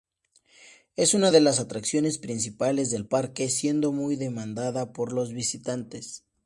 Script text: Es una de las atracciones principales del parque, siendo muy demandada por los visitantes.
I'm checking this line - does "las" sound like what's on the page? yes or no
yes